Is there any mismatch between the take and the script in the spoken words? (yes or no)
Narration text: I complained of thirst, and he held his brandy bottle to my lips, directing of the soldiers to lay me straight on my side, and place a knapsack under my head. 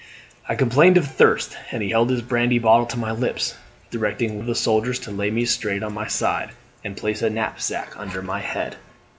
no